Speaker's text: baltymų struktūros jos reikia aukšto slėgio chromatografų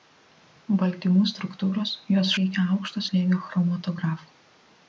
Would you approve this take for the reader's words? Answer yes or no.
yes